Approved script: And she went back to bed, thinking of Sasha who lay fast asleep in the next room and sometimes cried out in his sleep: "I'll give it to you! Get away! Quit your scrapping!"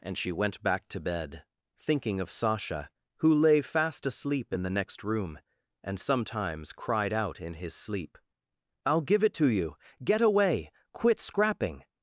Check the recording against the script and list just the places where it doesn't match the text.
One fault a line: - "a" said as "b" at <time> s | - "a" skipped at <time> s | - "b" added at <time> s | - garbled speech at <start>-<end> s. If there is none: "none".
- "your" skipped at 11.2 s